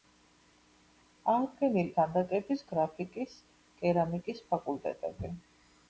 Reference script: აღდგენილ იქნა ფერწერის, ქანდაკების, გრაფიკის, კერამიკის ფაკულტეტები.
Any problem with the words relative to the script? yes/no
yes